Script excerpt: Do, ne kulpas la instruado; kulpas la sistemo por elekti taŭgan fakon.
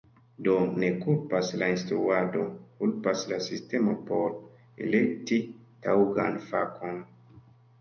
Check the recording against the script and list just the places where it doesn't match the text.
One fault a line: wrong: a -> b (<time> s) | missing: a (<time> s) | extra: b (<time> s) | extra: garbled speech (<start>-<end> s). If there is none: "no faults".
no faults